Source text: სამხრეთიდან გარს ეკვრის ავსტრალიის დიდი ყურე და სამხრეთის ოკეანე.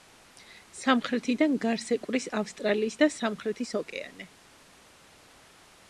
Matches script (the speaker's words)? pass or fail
fail